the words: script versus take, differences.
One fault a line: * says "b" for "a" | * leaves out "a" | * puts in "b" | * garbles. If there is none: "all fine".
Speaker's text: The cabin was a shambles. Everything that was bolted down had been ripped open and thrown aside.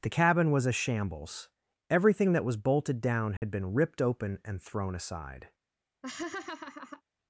all fine